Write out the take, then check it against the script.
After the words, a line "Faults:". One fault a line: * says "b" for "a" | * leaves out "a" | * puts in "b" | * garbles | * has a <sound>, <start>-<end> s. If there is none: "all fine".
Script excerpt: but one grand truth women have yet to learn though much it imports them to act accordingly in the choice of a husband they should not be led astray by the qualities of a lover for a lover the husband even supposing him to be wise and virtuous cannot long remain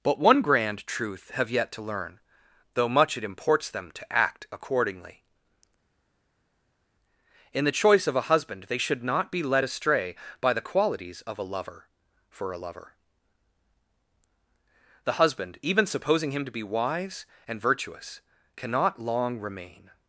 but one grand truth have yet to learn though much it imports them to act accordingly in the choice of a husband they should not be led astray by the qualities of a lover for a lover the husband even supposing him to be wise and virtuous cannot long remain
Faults:
* leaves out "women"